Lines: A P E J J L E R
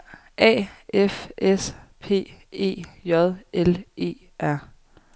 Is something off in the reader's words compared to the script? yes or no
yes